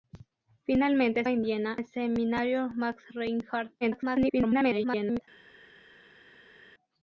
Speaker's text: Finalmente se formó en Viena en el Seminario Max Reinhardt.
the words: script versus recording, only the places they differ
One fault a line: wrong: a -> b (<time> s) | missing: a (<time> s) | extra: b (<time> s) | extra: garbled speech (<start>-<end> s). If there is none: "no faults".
missing: se formó (1.2 s)
missing: en (1.8 s)
extra: garbled speech (3.8-5.2 s)